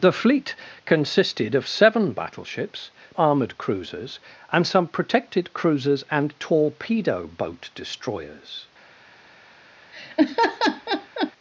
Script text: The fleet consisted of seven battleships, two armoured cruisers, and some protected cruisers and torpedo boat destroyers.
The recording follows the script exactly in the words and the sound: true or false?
false